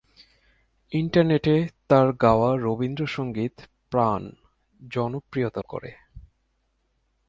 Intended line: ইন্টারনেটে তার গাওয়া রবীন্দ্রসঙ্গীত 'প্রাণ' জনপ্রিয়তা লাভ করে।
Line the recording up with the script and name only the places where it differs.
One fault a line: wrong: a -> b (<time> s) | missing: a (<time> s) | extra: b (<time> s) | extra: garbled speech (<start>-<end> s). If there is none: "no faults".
missing: লাভ (5.6 s)